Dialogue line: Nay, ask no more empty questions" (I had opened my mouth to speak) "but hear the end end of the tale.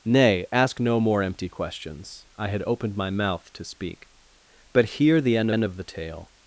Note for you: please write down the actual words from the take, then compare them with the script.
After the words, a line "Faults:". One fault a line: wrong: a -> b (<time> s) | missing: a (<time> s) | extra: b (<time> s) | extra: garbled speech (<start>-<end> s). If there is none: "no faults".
Nay, ask no more empty questions" (I had opened my mouth to speak) "but hear the end end of the tale.
Faults:
no faults